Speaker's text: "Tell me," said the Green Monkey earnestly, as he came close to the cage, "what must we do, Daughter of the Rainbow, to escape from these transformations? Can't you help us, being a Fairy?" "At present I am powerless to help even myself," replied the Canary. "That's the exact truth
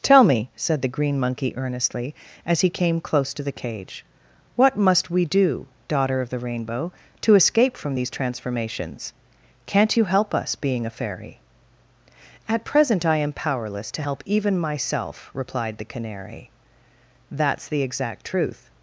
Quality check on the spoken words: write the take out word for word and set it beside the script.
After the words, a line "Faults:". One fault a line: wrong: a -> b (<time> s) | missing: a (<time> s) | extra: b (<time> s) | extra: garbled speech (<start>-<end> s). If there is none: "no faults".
"Tell me," said the Green Monkey earnestly, as he came close to the cage, "what must we do, Daughter of the Rainbow, to escape from these transformations? Can't you help us, being a Fairy?" "At present I am powerless to help even myself," replied the Canary. "That's the exact truth
Faults:
no faults